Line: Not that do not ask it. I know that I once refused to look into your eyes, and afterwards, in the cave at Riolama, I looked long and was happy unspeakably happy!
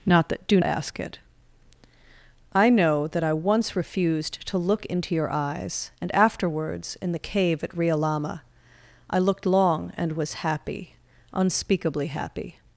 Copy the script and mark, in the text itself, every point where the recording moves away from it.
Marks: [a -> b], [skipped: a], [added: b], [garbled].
Not that do [skipped: not] ask it. I know that I once refused to look into your eyes, and afterwards, in the cave at Riolama, I looked long and was happy unspeakably happy!